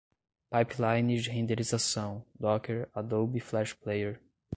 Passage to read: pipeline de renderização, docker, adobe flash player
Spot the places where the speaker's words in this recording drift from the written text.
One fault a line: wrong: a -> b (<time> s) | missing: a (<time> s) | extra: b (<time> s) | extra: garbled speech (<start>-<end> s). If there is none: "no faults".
no faults